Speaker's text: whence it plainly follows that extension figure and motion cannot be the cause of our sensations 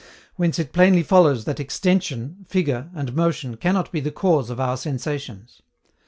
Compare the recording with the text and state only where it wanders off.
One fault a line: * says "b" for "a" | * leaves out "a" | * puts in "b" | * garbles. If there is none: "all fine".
all fine